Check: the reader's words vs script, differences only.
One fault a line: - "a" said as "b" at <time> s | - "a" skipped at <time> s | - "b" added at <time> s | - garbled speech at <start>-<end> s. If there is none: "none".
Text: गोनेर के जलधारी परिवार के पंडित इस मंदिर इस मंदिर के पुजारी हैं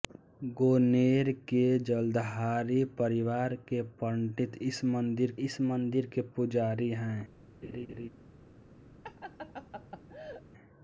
none